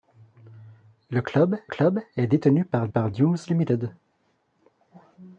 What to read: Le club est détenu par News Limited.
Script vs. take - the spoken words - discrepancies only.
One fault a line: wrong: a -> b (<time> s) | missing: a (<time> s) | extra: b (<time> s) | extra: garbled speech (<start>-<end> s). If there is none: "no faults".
extra: club (1.7 s)
extra: par (2.9 s)